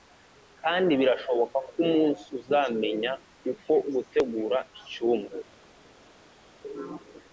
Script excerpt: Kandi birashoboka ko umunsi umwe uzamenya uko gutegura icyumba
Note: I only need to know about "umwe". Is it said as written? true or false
false